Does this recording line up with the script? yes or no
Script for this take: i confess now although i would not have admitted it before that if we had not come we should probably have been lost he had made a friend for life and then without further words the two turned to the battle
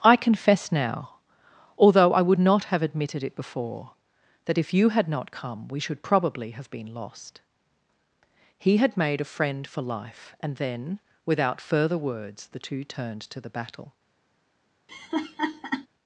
no